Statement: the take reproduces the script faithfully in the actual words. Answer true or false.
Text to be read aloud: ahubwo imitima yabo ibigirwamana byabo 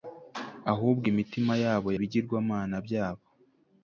true